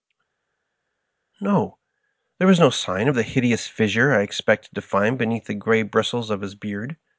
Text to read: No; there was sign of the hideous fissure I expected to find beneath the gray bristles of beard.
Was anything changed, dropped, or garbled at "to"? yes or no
no